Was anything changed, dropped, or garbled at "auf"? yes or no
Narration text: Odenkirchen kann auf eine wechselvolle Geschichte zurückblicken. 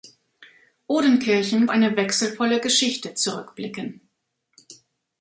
yes